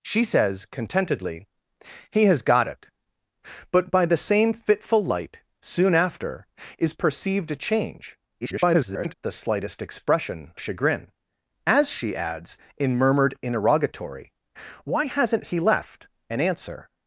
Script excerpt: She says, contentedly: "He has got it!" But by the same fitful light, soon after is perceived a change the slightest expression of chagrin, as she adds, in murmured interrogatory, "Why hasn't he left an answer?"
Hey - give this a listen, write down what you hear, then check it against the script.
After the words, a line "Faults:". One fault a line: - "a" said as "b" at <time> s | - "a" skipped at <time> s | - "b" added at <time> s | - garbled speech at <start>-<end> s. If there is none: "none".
She says, contentedly: "He has got it!" But by the same fitful light, soon after is perceived a change [garbled] the slightest expression chagrin, as she adds, in murmured interrogatory, "Why hasn't he left an answer?"
Faults:
- garbled speech at 8.4-9.1 s
- "of" skipped at 10.5 s